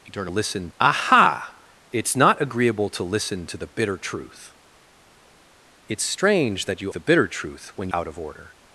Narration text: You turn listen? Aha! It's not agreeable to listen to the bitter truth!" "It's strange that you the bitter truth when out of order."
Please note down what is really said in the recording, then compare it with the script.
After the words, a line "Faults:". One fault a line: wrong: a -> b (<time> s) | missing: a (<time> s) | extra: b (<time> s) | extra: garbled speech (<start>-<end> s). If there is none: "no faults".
You turn listen? Aha! It's not agreeable to listen to the bitter truth!" "It's strange that you the bitter truth when out of order."
Faults:
no faults